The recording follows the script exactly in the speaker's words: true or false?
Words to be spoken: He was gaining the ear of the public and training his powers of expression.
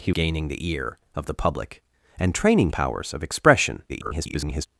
false